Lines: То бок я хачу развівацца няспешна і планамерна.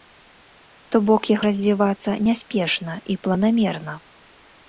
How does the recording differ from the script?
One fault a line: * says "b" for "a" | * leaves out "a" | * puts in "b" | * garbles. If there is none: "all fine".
* leaves out "хачу"